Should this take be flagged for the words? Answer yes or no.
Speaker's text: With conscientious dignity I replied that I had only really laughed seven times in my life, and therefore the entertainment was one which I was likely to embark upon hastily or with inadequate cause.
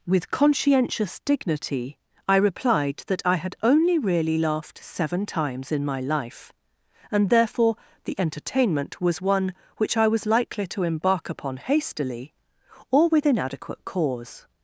no